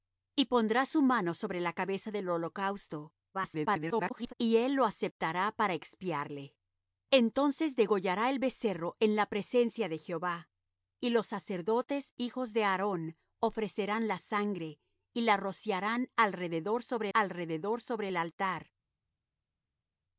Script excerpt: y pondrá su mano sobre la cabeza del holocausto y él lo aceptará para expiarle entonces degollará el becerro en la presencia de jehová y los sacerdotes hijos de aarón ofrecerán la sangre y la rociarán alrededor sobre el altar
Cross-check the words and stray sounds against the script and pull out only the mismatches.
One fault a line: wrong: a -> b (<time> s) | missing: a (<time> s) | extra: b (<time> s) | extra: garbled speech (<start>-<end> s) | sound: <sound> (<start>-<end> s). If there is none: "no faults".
extra: garbled speech (3.3-4.3 s)
extra: alrededor sobre (17.1 s)